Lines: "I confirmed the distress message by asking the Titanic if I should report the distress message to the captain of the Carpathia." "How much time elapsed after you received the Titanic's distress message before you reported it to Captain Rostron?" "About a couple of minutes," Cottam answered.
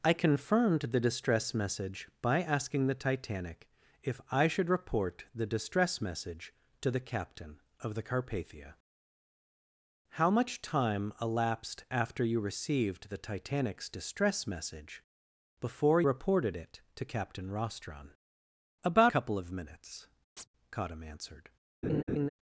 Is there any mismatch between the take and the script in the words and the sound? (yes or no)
yes